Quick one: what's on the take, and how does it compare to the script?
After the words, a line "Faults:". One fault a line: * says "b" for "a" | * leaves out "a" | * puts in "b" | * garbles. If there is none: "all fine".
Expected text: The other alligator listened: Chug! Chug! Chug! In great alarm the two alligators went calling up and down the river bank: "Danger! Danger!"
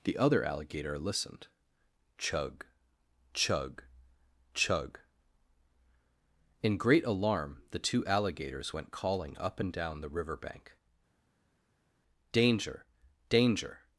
The other alligator listened: Chug! Chug! Chug! In great alarm the two alligators went calling up and down the river bank: "Danger! Danger!"
Faults:
all fine